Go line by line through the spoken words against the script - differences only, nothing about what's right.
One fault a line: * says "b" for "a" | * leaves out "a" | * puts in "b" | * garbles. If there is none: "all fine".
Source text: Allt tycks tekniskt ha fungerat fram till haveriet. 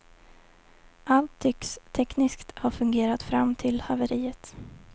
all fine